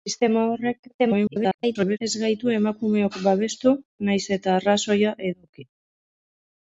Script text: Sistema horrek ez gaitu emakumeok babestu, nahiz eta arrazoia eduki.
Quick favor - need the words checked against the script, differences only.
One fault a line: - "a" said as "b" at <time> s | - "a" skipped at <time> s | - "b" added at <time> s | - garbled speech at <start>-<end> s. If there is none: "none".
- garbled speech at 1.0-2.0 s